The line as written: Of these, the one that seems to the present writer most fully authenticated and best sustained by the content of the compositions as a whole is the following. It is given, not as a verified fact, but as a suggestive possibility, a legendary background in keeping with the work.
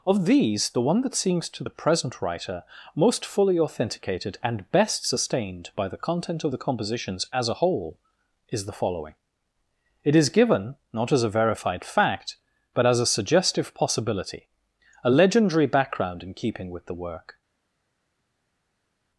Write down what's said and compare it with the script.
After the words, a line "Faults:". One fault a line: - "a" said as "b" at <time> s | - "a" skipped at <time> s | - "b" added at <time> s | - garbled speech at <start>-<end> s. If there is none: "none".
Of these, the one that seems to the present writer most fully authenticated and best sustained by the content of the compositions as a whole is the following. It is given, not as a verified fact, but as a suggestive possibility, a legendary background in keeping with the work.
Faults:
none